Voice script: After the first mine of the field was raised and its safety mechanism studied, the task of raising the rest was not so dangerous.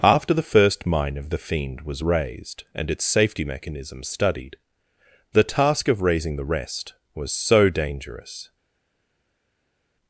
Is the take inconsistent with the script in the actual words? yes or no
yes